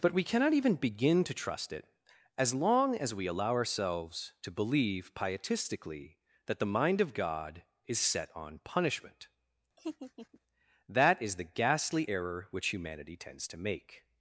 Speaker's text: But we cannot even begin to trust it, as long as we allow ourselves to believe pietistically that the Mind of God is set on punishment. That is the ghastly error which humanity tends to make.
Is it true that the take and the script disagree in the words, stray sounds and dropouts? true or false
true